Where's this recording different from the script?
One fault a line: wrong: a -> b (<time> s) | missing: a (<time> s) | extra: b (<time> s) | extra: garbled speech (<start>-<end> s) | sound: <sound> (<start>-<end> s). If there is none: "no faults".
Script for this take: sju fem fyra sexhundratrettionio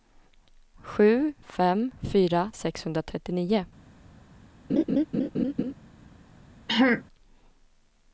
sound: laugh (4.7-5.7 s)
sound: throat clearing (6.7-7.0 s)